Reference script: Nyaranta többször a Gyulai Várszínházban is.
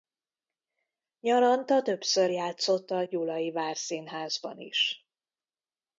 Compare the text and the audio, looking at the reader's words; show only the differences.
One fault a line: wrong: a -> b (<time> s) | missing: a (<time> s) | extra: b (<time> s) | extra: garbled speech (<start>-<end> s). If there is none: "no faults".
extra: játszott (2.3 s)